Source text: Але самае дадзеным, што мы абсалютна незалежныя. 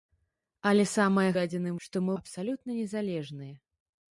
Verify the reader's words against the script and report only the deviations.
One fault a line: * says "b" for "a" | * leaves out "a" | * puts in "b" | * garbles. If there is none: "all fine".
all fine